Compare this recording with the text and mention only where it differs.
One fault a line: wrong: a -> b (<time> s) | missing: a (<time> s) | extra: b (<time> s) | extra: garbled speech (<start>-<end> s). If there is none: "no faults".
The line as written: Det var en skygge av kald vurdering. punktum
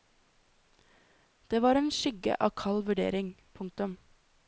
no faults